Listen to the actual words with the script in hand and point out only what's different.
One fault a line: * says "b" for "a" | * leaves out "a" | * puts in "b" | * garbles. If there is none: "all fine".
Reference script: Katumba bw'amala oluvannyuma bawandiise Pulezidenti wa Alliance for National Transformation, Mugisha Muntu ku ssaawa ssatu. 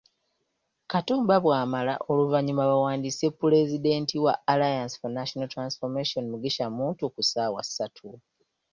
all fine